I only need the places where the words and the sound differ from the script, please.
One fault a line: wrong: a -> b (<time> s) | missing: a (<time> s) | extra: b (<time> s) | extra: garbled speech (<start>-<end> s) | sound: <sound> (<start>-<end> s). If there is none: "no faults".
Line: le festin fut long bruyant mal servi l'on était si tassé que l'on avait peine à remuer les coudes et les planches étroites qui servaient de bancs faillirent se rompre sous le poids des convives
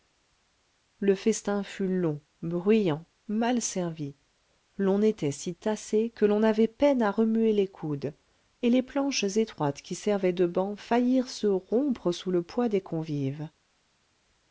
no faults